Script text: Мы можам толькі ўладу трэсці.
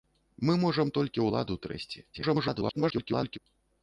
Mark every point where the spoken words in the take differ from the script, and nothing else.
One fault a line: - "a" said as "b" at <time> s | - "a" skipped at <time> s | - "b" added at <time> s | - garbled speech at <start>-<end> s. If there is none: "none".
- garbled speech at 2.1-3.4 s